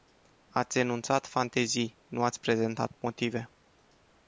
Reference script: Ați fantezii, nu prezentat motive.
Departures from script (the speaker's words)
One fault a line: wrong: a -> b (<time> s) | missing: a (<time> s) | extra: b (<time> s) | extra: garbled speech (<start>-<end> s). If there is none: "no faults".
extra: enunțat (0.8 s)
extra: ați (2.2 s)